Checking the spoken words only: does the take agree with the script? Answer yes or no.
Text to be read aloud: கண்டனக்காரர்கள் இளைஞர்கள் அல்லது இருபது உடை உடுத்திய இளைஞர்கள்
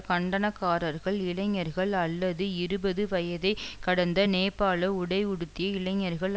no